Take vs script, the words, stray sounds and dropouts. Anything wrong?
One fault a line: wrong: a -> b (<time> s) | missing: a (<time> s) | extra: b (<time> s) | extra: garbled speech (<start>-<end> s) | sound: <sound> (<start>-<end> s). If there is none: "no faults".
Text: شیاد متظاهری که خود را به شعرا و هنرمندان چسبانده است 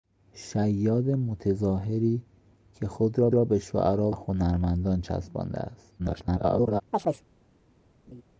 extra: را (3.3 s)
missing: و (4.1 s)
extra: garbled speech (6.0-6.8 s)
sound: chirp (6.9-7.3 s)
sound: laugh (8.1-8.2 s)